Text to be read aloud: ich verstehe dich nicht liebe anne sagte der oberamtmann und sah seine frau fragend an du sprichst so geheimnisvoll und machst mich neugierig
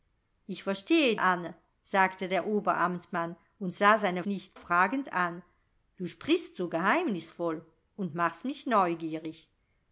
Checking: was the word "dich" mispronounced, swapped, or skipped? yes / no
yes